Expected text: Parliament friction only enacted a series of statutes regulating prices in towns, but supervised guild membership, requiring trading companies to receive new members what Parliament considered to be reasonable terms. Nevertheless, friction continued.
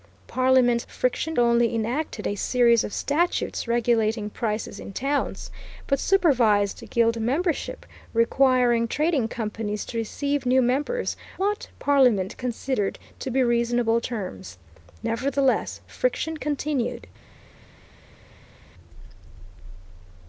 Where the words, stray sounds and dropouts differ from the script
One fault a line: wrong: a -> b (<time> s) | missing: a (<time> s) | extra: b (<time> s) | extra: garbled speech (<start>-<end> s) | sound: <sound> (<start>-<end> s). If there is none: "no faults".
no faults